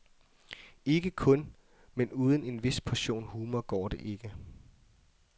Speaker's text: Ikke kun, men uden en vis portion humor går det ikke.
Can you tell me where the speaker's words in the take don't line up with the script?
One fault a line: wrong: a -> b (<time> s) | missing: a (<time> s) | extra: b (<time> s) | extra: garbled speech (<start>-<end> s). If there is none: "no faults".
no faults